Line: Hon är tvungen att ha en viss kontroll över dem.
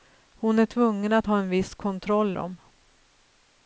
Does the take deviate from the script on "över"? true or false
true